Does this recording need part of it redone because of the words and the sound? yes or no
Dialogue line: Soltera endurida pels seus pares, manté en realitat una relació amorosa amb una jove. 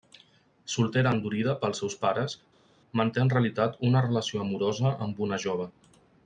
no